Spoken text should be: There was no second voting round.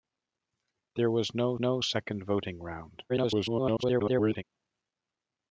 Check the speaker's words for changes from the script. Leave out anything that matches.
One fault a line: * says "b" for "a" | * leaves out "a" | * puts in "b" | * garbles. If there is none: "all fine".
* puts in "no"
* garbles